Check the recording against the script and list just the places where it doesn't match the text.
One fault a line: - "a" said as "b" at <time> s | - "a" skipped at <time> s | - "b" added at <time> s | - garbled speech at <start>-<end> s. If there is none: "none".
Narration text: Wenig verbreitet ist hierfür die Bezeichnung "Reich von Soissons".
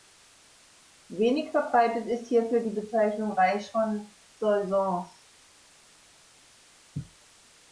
none